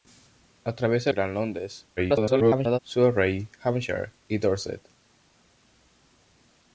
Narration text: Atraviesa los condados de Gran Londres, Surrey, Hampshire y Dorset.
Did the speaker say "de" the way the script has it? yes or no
no